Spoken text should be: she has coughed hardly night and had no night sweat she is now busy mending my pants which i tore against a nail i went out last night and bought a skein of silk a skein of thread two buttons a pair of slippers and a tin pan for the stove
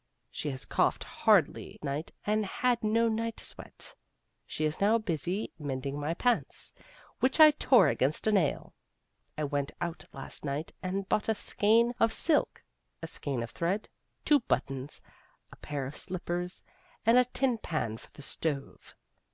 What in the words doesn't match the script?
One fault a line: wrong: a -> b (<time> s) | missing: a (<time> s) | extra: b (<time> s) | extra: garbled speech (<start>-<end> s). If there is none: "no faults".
no faults